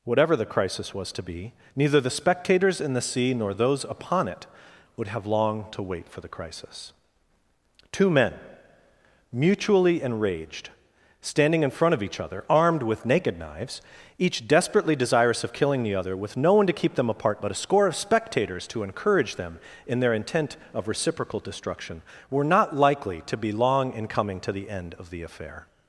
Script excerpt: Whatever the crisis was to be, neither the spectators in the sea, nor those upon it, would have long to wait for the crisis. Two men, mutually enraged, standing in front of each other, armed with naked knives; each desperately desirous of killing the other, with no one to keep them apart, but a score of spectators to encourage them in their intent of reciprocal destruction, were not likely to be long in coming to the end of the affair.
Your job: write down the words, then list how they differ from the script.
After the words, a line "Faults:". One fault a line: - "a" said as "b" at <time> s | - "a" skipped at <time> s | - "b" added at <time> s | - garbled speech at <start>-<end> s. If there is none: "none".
Whatever the crisis was to be, neither the spectators in the sea, nor those upon it, would have long to wait for the crisis. Two men, mutually enraged, standing in front of each other, armed with naked knives; each desperately desirous of killing the other, with no one to keep them apart, but a score of spectators to encourage them in their intent of reciprocal destruction, were not likely to be long in coming to the end of the affair.
Faults:
none